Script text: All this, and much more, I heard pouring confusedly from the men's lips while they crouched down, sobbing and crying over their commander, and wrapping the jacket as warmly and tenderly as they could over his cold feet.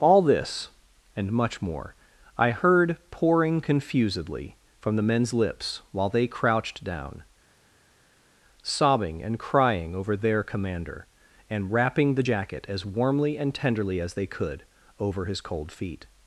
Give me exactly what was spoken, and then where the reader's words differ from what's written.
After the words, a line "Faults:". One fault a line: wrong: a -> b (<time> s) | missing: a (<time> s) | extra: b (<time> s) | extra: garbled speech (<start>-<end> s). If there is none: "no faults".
All this, and much more, I heard pouring confusedly from the men's lips while they crouched down, sobbing and crying over their commander, and wrapping the jacket as warmly and tenderly as they could over his cold feet.
Faults:
no faults